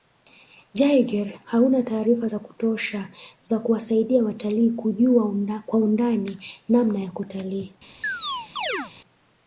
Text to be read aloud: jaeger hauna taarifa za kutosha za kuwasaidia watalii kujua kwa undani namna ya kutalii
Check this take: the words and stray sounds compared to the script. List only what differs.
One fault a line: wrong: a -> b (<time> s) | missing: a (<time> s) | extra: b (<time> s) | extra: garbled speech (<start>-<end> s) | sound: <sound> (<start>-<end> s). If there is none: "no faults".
sound: chirp (8.0-8.9 s)